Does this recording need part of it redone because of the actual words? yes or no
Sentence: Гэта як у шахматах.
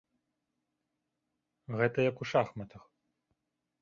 no